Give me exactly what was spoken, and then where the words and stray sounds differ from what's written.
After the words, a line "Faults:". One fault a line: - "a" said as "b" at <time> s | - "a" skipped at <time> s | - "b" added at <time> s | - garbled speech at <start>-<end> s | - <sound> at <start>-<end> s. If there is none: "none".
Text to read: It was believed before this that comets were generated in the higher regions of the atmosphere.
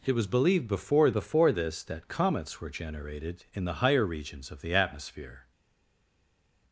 It was believed before before this that comets were generated in the higher regions of the atmosphere.
Faults:
- "before" added at 1.1 s